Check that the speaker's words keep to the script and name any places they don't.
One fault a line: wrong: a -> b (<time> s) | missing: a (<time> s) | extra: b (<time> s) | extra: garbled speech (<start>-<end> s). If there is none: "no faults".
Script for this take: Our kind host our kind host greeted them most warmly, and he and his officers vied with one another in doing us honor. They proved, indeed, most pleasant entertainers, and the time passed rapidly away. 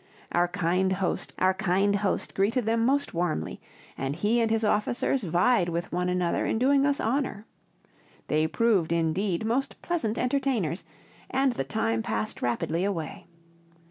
no faults